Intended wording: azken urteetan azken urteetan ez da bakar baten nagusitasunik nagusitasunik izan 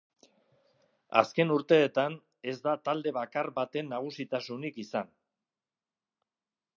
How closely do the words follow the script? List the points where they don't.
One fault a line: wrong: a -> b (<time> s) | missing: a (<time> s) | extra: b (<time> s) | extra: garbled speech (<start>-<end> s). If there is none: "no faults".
missing: azken urteetan (2.1 s)
extra: talde (2.9 s)
missing: nagusitasunik (4.8 s)